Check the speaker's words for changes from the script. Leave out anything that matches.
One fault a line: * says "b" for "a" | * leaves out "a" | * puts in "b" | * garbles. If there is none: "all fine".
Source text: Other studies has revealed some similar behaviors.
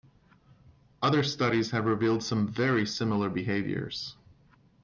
* says "have" for "has"
* puts in "very"